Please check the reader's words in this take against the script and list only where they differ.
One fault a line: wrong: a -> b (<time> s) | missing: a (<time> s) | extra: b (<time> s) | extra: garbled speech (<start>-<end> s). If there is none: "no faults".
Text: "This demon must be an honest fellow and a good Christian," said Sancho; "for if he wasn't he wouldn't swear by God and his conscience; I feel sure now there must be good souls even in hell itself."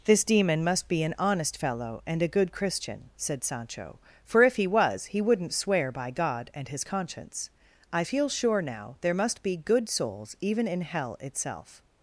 wrong: wasn't -> was (4.7 s)